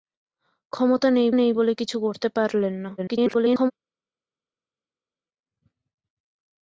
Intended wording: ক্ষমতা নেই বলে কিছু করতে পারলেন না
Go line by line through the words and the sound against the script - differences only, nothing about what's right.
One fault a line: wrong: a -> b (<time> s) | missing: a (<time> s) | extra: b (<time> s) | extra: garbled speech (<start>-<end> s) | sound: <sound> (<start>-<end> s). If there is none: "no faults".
extra: নেই (1.3 s)
extra: garbled speech (3.0-3.7 s)